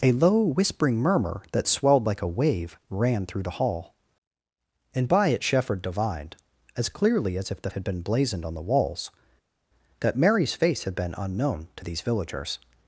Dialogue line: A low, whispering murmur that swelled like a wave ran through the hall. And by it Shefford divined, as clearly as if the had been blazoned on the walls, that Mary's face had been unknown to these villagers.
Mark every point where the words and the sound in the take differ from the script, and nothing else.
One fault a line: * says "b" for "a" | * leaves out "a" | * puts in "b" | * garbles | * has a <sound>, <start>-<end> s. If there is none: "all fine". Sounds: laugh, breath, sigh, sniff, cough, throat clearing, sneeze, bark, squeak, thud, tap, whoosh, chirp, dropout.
all fine